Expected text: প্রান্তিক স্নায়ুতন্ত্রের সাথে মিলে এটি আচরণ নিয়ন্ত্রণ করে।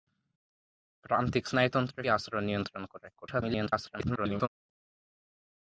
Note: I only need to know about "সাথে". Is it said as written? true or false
false